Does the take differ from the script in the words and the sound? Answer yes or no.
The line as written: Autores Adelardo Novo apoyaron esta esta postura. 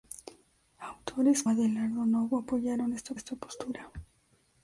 no